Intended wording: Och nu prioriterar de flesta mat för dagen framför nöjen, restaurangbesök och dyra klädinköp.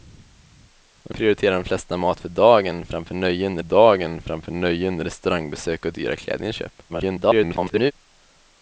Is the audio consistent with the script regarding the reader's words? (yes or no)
no